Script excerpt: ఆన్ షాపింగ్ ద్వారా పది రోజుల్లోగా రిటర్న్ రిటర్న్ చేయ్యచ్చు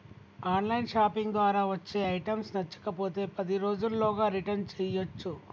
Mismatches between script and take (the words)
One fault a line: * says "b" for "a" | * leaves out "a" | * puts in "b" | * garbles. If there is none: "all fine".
* puts in "లైన్"
* puts in "వచ్చే ఐటమ్స్ నచ్చకపోతే"
* leaves out "రిటర్న్"